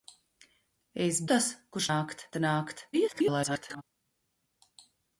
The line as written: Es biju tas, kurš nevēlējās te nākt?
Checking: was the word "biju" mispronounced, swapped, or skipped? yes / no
yes